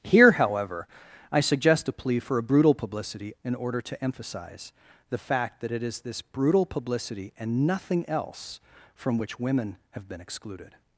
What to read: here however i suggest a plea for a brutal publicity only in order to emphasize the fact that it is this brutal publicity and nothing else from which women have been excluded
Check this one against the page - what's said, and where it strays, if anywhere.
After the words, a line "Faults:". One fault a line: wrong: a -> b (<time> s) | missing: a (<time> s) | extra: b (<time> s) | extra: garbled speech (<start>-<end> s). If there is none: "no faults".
here however i suggest a plea for a brutal publicity in order to emphasize the fact that it is this brutal publicity and nothing else from which women have been excluded
Faults:
missing: only (3.3 s)